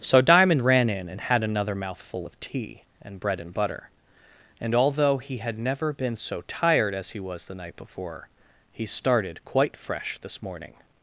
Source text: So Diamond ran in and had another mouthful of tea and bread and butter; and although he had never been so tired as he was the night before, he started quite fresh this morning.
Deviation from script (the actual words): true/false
false